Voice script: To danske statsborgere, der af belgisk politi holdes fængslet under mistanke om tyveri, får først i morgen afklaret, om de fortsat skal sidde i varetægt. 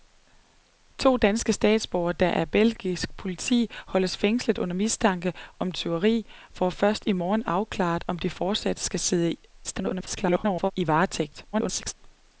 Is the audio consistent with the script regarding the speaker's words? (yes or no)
no